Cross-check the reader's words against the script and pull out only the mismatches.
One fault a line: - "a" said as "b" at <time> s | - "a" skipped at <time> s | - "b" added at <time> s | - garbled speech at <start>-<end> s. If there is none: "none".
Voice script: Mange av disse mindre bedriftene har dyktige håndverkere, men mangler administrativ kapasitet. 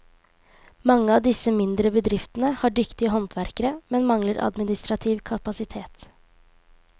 none